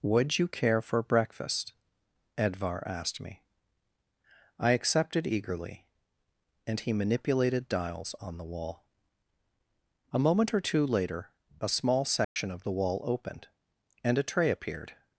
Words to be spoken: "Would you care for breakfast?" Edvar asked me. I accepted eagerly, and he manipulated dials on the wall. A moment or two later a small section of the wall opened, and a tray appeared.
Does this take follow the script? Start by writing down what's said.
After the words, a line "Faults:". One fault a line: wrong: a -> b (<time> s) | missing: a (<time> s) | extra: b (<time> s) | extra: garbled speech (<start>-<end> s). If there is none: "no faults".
"Would you care for breakfast?" Edvar asked me. I accepted eagerly, and he manipulated dials on the wall. A moment or two later a small section of the wall opened, and a tray appeared.
Faults:
no faults